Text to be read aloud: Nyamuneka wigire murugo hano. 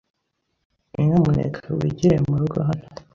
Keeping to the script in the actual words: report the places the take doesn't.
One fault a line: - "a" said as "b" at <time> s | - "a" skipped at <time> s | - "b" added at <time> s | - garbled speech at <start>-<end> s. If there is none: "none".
none